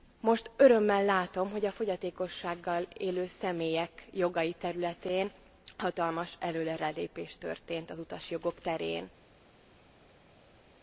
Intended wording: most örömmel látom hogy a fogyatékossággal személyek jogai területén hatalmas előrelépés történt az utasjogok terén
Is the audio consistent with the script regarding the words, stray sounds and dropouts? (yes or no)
no